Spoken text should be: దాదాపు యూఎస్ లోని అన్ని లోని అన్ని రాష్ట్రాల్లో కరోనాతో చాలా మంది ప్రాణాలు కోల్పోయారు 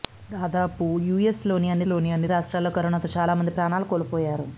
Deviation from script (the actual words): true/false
false